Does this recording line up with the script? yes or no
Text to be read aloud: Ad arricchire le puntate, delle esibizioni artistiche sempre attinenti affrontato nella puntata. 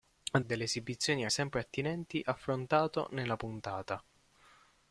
no